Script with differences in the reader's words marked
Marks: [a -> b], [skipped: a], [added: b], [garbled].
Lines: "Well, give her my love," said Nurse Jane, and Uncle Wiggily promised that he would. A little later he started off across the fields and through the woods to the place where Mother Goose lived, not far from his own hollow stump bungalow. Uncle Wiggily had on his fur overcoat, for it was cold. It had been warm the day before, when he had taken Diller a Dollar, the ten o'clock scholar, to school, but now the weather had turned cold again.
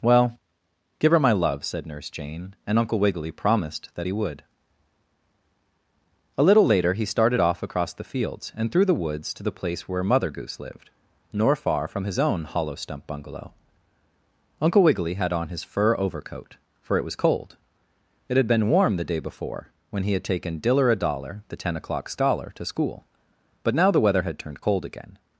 "Well, give her my love," said Nurse Jane, and Uncle Wiggily promised that he would. A little later he started off across the fields and through the woods to the place where Mother Goose lived, [not -> nor] far from his own hollow stump bungalow. Uncle Wiggily had on his fur overcoat, for it was cold. It had been warm the day before, when he had taken Diller a Dollar, the ten o'clock scholar, to school, but now the weather had turned cold again.